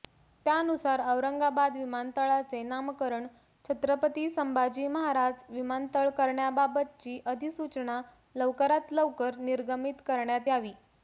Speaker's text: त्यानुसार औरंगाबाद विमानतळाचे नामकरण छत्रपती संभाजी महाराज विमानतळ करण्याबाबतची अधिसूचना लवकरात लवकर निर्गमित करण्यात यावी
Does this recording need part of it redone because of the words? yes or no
no